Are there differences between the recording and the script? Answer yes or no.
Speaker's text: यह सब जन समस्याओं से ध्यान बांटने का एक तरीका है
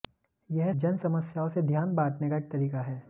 yes